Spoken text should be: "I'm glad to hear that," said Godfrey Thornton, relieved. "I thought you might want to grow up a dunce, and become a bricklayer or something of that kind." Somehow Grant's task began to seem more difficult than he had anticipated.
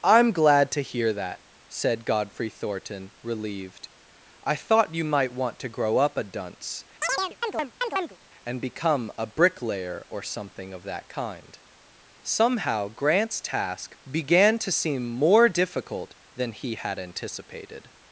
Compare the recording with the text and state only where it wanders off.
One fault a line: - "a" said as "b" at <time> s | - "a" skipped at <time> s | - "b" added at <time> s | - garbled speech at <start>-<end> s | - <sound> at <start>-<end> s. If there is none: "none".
- chirp at 7.0-8.2 s